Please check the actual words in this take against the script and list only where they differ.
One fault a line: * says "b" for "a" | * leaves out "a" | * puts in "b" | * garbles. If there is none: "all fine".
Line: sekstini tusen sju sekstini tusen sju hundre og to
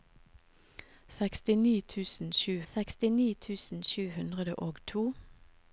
all fine